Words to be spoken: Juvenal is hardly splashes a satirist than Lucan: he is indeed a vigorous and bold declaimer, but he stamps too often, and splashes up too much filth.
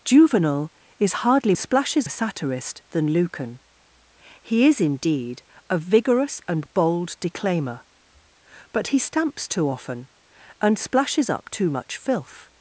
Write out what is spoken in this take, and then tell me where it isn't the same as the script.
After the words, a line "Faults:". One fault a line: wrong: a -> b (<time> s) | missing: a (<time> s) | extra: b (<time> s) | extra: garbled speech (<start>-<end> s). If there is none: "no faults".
Juvenal is hardly splashes a satirist than Lucan: he is indeed a vigorous and bold declaimer, but he stamps too often, and splashes up too much filth.
Faults:
no faults